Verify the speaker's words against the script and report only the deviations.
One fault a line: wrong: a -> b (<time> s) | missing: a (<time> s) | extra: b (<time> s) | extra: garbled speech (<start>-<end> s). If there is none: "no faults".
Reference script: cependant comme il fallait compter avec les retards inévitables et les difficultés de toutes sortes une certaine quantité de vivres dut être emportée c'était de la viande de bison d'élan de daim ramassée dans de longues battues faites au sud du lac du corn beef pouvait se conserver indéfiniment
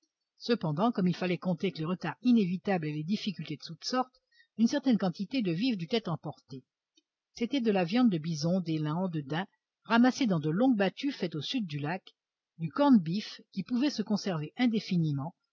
extra: qui (13.5 s)